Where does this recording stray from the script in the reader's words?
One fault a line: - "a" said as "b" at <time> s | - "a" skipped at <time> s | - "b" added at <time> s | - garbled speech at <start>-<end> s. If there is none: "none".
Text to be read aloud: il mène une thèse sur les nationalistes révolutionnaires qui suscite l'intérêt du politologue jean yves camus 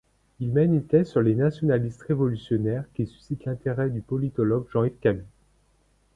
none